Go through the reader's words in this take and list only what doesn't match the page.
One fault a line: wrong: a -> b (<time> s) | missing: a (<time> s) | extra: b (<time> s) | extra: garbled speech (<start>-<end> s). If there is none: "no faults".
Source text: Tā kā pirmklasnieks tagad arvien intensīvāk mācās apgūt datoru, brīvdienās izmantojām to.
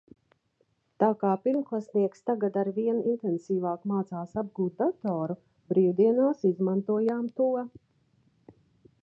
no faults